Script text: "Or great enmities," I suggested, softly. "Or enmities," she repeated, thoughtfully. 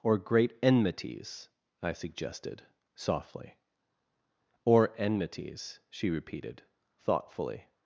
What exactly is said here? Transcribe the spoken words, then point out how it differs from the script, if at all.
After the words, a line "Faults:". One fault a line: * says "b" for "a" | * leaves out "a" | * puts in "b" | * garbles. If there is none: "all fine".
"Or great enmities," I suggested, softly. "Or enmities," she repeated, thoughtfully.
Faults:
all fine